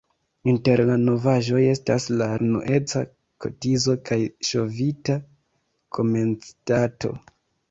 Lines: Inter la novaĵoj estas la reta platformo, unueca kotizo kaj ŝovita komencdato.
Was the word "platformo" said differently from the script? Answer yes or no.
yes